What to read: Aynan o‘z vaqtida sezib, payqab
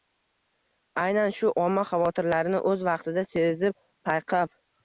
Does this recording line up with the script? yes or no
no